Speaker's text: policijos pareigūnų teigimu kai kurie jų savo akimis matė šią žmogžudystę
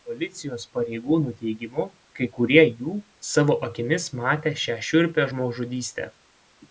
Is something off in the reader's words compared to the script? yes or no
yes